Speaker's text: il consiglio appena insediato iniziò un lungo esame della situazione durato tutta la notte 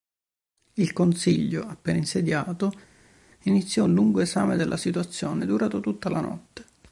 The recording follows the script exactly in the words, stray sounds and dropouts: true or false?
true